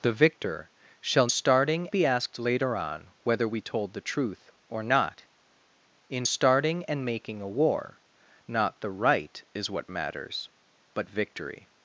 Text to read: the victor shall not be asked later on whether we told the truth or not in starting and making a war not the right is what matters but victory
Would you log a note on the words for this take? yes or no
yes